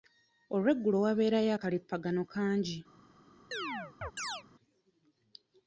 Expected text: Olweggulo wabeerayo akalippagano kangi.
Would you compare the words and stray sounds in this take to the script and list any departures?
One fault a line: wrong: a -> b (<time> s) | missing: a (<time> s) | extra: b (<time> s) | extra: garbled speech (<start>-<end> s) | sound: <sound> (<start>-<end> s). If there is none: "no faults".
sound: chirp (3.5-4.4 s)